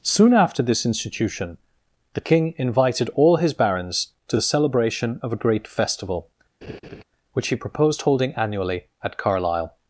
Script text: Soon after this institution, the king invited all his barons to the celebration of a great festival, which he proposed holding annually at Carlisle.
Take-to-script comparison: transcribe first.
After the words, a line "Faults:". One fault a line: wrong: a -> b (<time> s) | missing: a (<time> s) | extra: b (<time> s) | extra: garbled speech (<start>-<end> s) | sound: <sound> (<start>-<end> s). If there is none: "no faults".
Soon after this institution, the king invited all his barons to the celebration of a great festival, which he proposed holding annually at Carlisle.
Faults:
sound: laugh (6.6-7.0 s)